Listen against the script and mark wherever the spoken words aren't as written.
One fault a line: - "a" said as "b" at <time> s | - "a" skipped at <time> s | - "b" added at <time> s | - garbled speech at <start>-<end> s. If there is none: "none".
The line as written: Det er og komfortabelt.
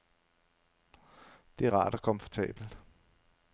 - "rart" added at 1.7 s